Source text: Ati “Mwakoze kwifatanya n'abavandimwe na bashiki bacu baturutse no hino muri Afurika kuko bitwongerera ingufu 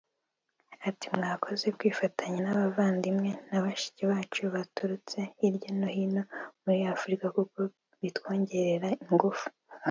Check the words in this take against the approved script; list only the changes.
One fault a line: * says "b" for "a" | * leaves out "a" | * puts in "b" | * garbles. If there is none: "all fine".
* puts in "hirya"